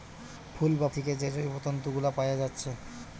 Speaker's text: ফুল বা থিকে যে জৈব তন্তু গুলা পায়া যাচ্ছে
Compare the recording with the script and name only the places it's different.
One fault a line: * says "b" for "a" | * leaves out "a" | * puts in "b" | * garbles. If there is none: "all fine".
all fine